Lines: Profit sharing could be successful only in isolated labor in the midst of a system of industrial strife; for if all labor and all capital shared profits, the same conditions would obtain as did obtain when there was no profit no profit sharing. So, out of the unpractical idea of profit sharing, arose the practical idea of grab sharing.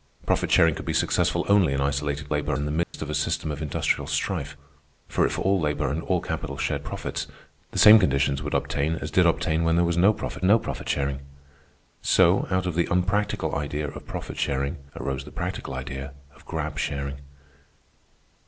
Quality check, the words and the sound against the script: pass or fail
fail